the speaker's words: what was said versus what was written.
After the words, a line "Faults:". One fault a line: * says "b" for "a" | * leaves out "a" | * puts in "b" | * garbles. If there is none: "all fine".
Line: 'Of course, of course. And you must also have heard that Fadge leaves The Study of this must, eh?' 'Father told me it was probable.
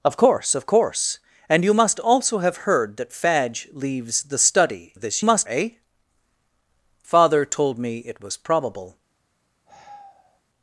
'Of course, of course. And you must also have heard that Fadge leaves The Study of this must, eh?' 'Father told me it was probable.
Faults:
all fine